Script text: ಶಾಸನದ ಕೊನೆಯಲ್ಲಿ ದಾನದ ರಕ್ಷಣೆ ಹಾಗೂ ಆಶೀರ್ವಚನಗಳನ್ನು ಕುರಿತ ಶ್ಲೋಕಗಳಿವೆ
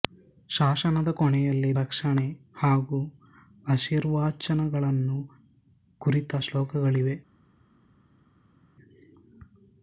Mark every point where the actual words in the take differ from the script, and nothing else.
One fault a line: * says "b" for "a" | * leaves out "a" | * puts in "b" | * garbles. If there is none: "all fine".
* leaves out "ದಾನದ"